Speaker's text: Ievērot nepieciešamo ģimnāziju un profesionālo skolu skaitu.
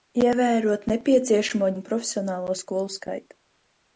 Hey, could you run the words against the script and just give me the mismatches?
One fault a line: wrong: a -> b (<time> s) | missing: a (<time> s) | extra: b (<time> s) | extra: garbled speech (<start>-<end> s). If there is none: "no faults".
missing: ģimnāziju (1.7 s)